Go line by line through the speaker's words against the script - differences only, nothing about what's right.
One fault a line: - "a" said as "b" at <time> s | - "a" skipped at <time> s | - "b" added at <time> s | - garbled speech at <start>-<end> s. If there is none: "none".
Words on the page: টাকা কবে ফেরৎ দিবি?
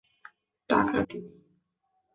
- "কবে ফেরৎ" skipped at 1.0 s